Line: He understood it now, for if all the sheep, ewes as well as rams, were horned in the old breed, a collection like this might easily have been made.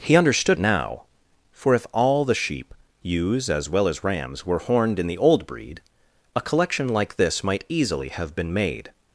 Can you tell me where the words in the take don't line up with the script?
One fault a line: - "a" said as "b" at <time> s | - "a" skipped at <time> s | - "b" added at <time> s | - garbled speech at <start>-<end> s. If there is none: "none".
- "it" skipped at 0.6 s